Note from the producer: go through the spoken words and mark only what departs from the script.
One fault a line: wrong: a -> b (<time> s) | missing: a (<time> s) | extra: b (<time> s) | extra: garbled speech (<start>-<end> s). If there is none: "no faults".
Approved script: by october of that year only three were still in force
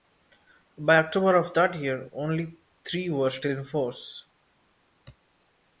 no faults